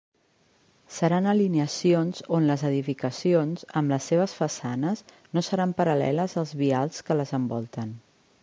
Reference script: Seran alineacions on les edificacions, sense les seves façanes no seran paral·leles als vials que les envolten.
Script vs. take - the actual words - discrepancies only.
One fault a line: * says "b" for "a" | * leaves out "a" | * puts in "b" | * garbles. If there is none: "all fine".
* says "amb" for "sense"